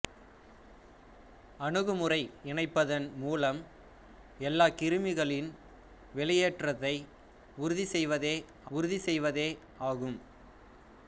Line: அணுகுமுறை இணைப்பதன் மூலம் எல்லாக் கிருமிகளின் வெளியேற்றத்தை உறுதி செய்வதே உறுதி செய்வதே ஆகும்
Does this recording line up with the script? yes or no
yes